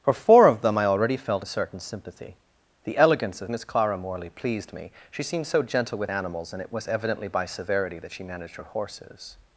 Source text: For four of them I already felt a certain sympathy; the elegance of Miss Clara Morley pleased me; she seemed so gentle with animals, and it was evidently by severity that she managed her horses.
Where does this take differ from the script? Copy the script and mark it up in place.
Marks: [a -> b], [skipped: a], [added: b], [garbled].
For four of them I already felt a certain sympathy; the elegance of Miss Clara Morley pleased me; she seemed so gentle with animals, and it was evidently by severity that she managed her horses.